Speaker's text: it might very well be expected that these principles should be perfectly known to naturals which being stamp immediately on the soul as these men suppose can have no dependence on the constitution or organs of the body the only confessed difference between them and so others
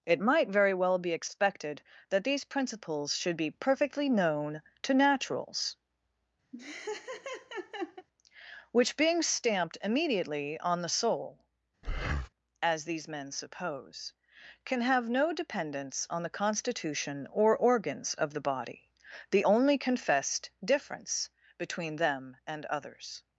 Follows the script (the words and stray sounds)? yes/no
no